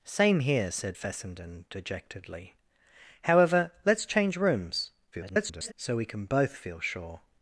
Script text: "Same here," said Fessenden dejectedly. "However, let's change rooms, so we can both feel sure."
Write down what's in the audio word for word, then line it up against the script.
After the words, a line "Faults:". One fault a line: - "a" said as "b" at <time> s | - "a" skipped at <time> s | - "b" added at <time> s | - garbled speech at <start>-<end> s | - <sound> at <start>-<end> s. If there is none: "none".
"Same here," said Fessenden dejectedly. "However, let's change rooms, [garbled] so we can both feel sure."
Faults:
- garbled speech at 5.1-5.7 s